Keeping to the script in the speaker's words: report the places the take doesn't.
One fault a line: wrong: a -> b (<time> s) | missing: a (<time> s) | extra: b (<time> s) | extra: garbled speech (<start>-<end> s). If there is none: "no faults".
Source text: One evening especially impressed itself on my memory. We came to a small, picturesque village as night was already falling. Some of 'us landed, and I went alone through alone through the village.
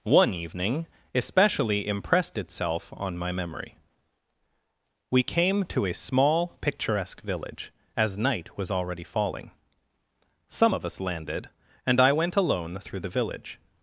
missing: alone through (13.0 s)